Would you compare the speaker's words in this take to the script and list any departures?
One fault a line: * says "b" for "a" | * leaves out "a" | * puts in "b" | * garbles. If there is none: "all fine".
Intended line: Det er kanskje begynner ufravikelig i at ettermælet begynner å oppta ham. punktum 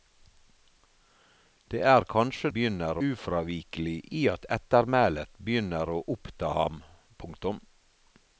all fine